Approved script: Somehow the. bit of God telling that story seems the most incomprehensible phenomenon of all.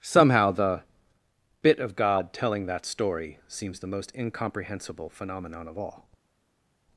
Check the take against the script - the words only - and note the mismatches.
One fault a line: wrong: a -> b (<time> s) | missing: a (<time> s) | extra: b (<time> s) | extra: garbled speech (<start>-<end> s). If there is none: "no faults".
no faults